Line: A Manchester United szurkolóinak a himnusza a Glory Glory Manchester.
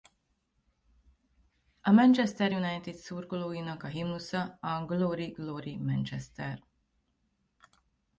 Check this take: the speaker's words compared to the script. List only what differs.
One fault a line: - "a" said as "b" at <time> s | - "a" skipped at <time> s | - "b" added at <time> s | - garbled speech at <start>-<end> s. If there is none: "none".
none